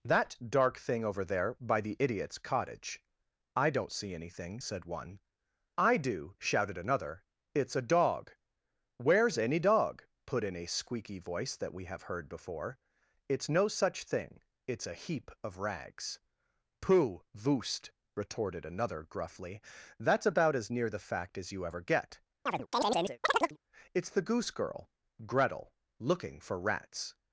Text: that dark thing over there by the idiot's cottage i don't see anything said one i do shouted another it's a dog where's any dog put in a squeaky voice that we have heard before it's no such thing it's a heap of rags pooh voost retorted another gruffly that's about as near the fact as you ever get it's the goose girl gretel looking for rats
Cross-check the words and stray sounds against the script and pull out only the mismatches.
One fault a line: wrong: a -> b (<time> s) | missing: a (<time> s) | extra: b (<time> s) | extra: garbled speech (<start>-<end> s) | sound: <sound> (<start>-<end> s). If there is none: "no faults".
sound: chirp (22.5-23.6 s)